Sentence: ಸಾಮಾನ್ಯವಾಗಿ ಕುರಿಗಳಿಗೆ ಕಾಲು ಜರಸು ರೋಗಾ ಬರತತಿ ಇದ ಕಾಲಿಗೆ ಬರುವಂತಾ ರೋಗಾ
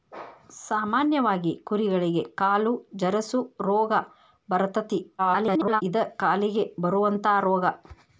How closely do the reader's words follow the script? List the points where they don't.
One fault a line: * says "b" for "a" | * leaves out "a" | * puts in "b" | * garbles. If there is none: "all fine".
* garbles